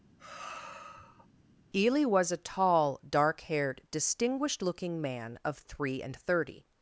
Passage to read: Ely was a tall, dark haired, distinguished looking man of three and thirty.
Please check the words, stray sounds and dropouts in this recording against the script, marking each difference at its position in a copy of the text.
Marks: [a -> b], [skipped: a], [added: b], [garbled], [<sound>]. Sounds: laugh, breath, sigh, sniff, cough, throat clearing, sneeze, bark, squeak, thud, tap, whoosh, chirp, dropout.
[sigh] Ely was a tall, dark haired, distinguished looking man of three and thirty.